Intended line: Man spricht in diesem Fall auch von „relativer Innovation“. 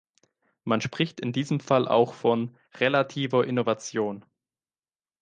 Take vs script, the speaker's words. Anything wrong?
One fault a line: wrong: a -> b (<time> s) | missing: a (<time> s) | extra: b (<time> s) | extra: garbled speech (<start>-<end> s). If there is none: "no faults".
no faults